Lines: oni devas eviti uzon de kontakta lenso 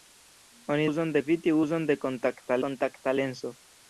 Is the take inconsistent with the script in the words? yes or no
yes